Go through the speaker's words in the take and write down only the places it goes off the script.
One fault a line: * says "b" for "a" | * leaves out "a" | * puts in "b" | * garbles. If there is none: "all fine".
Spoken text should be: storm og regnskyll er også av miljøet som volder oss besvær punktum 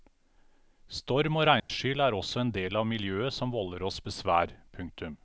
* puts in "en del"